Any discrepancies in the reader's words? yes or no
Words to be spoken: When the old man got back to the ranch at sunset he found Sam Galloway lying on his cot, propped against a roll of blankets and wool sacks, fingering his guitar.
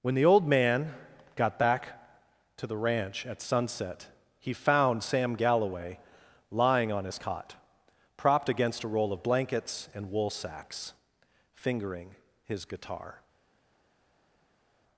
no